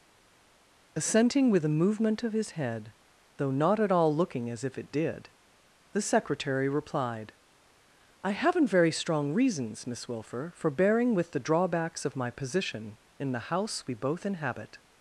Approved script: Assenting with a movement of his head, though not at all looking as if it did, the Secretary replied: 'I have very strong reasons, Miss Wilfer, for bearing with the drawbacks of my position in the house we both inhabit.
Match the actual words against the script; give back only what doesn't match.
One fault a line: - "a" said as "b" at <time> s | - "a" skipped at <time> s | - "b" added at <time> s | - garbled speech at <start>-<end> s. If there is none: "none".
- "have" said as "haven't" at 8.3 s